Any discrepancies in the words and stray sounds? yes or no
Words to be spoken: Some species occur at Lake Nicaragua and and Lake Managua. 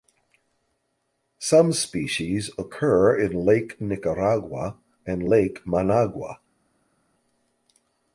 yes